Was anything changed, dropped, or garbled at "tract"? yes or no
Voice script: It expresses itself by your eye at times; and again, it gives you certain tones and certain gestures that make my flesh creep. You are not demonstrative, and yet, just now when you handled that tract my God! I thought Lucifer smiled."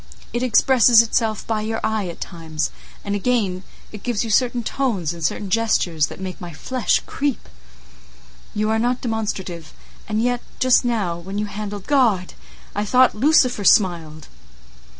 yes